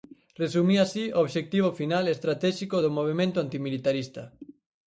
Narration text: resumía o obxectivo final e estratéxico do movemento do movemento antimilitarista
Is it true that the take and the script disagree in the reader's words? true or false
true